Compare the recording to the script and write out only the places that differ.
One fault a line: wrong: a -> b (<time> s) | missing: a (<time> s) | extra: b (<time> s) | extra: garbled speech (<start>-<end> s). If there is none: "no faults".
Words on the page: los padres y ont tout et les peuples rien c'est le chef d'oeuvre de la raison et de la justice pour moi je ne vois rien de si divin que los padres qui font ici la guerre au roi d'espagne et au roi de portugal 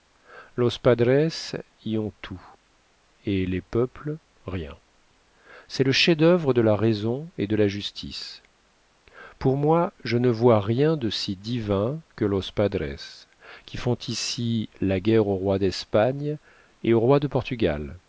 no faults